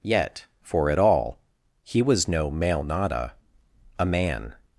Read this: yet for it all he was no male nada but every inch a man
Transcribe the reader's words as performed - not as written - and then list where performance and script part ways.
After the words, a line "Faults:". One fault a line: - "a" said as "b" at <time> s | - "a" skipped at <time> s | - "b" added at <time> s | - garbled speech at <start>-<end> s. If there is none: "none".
yet for it all he was no male nada a man
Faults:
- "but every inch" skipped at 3.3 s